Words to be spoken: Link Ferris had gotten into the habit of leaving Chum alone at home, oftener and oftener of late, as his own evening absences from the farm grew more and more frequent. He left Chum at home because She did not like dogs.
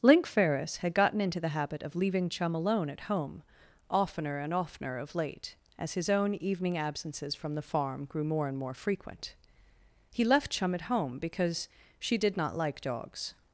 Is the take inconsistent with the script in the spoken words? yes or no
no